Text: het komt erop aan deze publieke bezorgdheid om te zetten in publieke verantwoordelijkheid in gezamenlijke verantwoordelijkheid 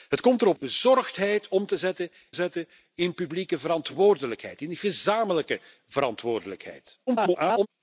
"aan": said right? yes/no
no